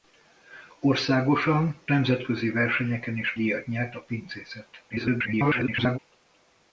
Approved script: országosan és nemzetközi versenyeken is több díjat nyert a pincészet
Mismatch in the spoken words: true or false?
true